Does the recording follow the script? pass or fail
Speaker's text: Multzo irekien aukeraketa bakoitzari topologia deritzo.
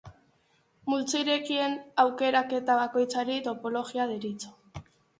pass